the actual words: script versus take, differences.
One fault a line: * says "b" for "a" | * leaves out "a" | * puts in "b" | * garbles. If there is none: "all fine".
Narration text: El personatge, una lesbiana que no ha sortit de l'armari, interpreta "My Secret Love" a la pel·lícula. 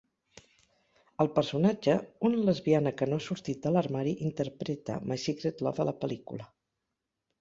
all fine